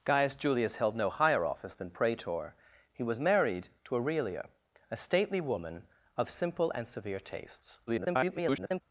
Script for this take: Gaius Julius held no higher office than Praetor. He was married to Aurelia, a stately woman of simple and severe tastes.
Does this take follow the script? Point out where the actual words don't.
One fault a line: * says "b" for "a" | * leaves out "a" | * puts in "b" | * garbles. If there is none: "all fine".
* garbles